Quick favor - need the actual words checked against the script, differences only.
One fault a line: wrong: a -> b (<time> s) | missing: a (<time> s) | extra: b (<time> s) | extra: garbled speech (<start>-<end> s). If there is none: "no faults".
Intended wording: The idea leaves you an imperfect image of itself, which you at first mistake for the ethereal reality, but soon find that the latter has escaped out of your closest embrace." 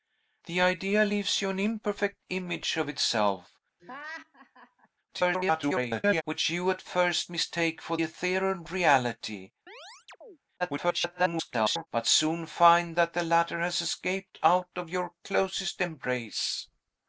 extra: garbled speech (5.1-6.2 s)
missing: the (8.0 s)
extra: garbled speech (10.6-11.9 s)